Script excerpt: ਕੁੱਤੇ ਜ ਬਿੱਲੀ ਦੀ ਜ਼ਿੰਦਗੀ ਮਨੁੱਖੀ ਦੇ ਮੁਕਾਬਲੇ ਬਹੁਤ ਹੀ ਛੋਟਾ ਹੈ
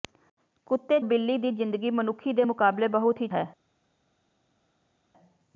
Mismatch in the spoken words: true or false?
true